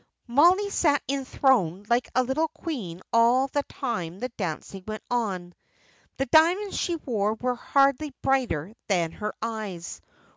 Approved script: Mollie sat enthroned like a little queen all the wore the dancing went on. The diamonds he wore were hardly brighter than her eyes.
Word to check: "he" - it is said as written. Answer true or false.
false